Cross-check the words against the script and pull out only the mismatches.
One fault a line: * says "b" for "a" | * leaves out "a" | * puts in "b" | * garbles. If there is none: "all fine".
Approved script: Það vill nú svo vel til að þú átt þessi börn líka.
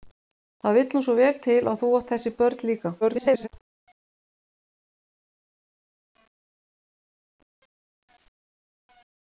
* garbles